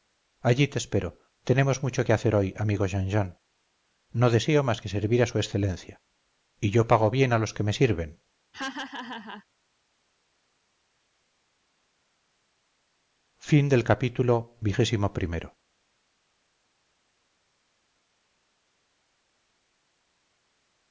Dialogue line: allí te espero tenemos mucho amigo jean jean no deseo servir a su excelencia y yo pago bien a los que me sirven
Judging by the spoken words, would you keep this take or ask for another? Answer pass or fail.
fail